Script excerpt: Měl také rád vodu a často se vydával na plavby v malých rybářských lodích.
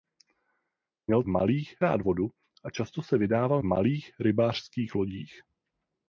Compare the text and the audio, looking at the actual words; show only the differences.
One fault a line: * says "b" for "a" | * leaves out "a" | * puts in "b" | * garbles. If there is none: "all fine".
* says "malých" for "také"
* leaves out "na plavby"